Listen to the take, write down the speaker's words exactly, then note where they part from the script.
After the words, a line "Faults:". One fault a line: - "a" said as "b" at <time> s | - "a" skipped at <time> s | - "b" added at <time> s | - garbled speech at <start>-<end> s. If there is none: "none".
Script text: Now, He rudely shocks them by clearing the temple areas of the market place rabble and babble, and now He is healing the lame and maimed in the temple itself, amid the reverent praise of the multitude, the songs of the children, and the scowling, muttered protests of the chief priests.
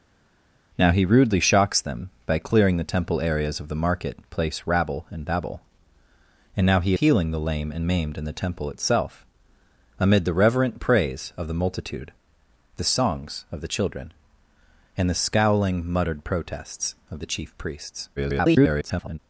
Now, He rudely shocks them by clearing the temple areas of the market place rabble and babble, and now He healing the lame and maimed in the temple itself, amid the reverent praise of the multitude, the songs of the children, and the scowling, muttered protests of the chief priests. [garbled]
Faults:
- "is" skipped at 6.9 s
- garbled speech at 18.2-19.2 s